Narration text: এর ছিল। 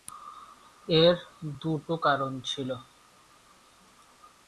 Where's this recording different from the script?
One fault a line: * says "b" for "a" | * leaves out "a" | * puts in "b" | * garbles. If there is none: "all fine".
* puts in "দুটো কারণ"